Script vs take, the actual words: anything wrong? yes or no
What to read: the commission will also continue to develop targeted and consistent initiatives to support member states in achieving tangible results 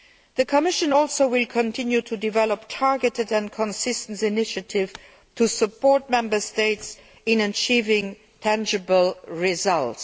no